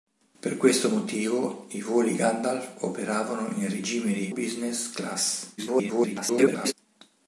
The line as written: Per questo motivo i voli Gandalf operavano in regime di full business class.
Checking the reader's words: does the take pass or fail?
fail